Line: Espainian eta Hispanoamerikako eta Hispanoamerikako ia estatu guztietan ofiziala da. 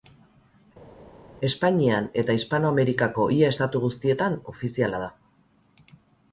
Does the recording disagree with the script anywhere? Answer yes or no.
yes